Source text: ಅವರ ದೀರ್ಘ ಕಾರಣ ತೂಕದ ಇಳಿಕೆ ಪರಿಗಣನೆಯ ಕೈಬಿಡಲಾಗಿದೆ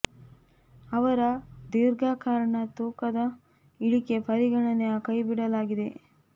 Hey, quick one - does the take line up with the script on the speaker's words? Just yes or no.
yes